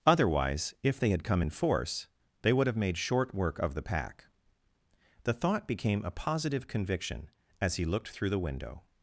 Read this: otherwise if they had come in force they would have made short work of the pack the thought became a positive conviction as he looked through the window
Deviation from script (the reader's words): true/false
false